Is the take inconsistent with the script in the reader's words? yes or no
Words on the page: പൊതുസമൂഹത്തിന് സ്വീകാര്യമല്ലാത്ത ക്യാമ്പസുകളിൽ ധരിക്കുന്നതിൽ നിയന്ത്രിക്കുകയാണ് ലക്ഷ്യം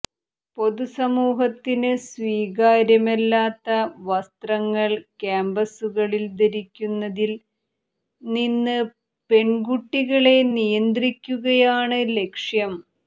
yes